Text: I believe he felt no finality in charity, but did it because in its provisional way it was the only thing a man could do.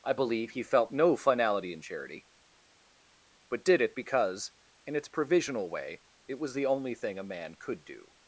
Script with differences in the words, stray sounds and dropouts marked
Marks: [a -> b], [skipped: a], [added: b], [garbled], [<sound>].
I believe he felt no finality in charity, but did it because in its provisional way it was the only thing a man could do.